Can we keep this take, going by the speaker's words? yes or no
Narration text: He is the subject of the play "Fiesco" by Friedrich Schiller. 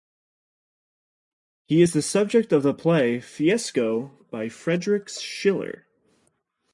yes